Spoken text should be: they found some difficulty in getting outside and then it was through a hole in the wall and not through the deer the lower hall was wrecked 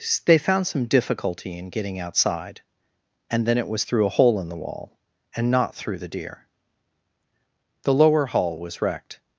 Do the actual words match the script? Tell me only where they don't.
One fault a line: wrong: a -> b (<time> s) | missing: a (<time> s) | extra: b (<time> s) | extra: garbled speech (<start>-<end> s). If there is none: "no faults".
no faults